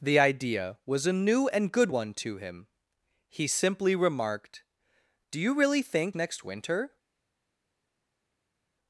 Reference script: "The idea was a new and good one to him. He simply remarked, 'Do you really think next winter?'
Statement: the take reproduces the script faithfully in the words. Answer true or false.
true